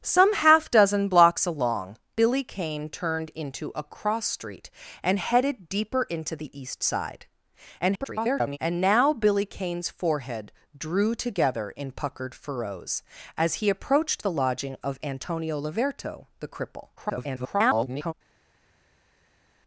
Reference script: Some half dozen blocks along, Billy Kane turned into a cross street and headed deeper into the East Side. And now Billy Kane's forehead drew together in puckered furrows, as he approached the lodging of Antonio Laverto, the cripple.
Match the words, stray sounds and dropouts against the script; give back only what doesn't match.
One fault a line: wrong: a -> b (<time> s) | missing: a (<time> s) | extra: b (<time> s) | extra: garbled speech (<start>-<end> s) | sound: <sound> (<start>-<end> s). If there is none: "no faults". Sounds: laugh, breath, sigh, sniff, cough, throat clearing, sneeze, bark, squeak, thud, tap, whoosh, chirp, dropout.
extra: garbled speech (7.8-8.6 s)
extra: garbled speech (17.0-18.1 s)